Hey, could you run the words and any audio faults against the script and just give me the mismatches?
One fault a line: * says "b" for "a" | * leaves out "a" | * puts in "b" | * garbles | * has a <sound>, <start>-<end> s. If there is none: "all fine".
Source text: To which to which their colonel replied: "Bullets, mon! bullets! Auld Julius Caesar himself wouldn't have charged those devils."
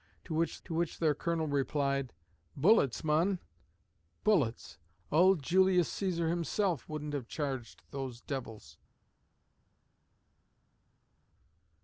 all fine